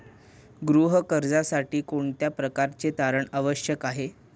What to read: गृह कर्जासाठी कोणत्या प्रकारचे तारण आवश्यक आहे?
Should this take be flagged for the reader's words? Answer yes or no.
no